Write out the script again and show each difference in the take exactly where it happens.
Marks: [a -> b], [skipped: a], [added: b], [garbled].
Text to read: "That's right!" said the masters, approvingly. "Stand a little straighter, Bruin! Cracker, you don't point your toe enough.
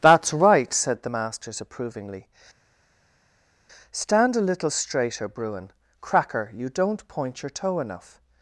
"That's right!" said the masters, approvingly. "Stand a little straighter, Bruin! Cracker, you don't point your toe enough.